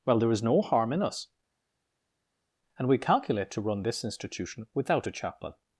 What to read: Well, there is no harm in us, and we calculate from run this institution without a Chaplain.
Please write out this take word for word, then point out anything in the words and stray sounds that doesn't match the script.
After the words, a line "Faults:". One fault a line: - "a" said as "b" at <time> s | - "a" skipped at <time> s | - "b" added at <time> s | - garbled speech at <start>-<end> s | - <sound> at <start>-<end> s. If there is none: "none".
Well, there is no harm in us, and we calculate to run this institution without a Chaplain.
Faults:
- "from" said as "to" at 3.5 s